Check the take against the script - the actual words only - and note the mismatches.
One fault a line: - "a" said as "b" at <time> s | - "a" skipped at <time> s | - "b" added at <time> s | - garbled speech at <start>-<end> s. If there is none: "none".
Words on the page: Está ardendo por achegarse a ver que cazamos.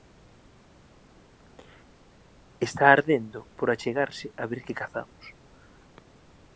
none